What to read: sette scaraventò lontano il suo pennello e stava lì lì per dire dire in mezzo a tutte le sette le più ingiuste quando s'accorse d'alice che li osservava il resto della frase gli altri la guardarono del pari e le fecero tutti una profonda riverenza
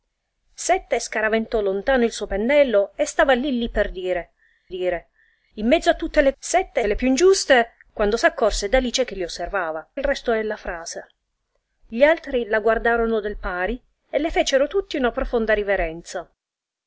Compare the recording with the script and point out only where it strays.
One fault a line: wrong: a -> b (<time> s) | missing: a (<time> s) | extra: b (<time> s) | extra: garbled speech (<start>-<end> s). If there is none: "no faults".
no faults